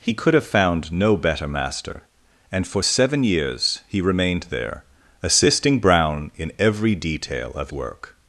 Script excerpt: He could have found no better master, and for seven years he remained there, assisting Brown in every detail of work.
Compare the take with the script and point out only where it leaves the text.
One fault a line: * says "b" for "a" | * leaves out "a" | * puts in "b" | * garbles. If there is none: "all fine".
all fine